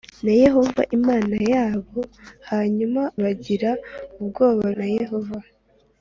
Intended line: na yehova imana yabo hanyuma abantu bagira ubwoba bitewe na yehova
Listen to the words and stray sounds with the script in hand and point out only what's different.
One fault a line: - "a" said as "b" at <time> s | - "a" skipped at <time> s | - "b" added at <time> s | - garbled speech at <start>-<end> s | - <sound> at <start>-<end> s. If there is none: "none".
- "abantu" skipped at 3.0 s
- "bitewe" skipped at 4.6 s